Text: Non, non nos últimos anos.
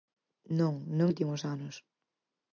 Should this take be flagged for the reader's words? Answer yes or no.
yes